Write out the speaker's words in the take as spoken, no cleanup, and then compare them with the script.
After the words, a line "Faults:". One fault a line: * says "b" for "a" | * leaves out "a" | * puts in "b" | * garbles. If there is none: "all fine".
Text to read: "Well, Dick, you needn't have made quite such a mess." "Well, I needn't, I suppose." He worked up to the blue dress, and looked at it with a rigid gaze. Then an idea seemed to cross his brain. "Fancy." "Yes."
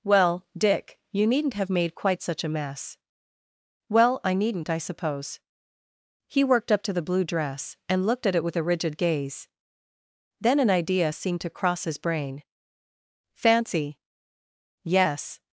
"Well, Dick, you needn't have made quite such a mess." "Well, I needn't, I suppose." He worked up to the blue dress, and looked at it with a rigid gaze. Then an idea seemed to cross his brain. "Fancy." "Yes."
Faults:
all fine